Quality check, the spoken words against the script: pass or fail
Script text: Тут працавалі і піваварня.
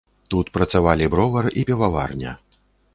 fail